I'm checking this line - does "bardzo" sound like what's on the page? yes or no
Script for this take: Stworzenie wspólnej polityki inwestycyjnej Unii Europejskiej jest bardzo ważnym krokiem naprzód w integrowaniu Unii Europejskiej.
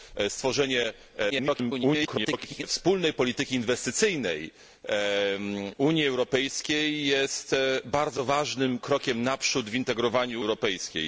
yes